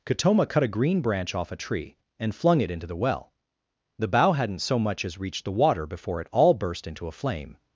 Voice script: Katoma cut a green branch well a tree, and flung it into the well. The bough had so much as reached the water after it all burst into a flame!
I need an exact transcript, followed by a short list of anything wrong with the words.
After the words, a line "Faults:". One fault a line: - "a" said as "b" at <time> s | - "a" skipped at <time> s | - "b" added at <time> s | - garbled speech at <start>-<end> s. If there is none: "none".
Katoma cut a green branch off a tree, and flung it into the well. The bough hadn't so much as reached the water before it all burst into a flame!
Faults:
- "well" said as "off" at 1.4 s
- "had" said as "hadn't" at 4.3 s
- "after" said as "before" at 5.8 s